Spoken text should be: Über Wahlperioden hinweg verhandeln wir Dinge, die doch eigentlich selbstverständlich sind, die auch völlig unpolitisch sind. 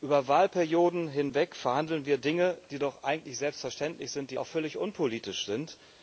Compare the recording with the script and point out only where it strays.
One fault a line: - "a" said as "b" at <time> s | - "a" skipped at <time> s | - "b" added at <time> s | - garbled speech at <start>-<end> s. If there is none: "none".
none